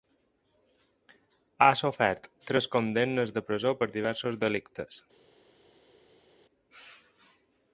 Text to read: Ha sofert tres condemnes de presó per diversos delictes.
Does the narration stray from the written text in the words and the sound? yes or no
no